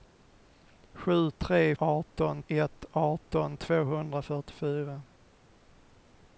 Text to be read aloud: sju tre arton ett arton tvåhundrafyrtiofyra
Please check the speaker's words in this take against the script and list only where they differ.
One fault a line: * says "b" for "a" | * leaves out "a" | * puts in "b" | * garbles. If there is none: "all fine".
all fine